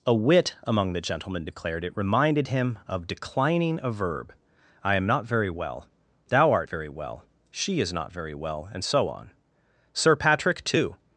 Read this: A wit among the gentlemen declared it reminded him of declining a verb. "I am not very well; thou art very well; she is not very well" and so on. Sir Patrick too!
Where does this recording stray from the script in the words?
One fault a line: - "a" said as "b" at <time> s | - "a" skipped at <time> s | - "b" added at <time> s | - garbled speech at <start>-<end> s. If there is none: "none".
none